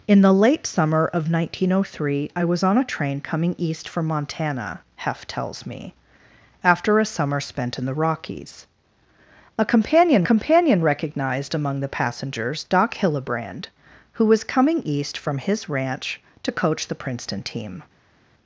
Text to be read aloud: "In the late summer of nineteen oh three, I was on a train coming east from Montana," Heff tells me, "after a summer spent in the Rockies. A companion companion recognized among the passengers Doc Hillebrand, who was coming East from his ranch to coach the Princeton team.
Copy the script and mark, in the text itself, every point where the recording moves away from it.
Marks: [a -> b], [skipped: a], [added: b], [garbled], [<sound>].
"In the late summer of nineteen oh three, I was on a train coming east from Montana," Heff tells me, "after a summer spent in the Rockies. A companion companion recognized among the passengers Doc Hillebrand, who was coming East from his ranch to coach the Princeton team.